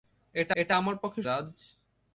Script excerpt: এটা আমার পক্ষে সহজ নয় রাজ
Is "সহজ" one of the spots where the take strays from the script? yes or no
yes